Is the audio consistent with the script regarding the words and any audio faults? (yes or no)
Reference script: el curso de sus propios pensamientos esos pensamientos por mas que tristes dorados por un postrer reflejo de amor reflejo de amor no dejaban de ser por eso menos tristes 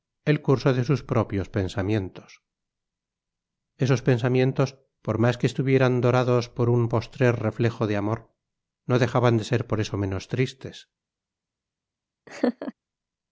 no